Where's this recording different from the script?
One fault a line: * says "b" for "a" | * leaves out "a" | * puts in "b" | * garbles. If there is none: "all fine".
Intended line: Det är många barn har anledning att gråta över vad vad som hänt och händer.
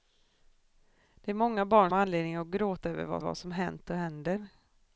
all fine